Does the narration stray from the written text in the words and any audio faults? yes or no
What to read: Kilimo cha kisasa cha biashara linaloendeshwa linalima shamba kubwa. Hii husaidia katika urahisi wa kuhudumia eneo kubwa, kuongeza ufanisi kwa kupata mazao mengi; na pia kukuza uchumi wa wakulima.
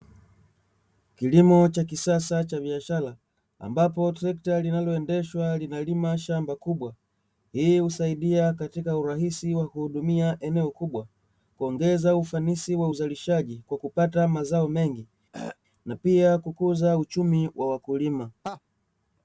yes